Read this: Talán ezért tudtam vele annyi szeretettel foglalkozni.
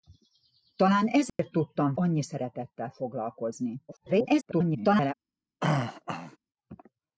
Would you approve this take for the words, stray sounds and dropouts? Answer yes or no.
no